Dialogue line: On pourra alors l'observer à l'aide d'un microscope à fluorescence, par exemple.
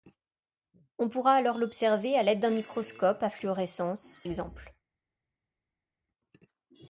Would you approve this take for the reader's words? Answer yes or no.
no